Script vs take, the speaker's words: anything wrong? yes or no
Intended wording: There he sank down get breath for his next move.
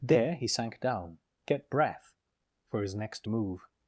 no